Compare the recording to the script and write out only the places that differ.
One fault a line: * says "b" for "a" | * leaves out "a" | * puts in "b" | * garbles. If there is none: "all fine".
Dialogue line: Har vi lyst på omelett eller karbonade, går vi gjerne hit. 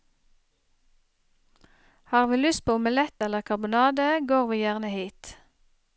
all fine